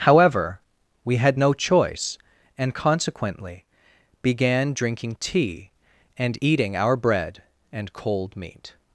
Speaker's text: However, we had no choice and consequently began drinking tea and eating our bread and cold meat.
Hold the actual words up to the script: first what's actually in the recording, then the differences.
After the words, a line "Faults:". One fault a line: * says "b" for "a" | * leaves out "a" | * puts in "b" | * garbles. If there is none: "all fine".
However, we had no choice and consequently began drinking tea and eating our bread and cold meat.
Faults:
all fine